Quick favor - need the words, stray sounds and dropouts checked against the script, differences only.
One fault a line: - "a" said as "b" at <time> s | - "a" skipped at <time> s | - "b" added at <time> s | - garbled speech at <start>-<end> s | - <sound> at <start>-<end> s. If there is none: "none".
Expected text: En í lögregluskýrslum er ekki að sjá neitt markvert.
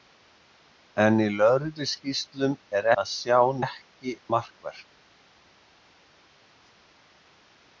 - "ekki" skipped at 2.9 s
- "neitt" said as "ekki" at 3.6 s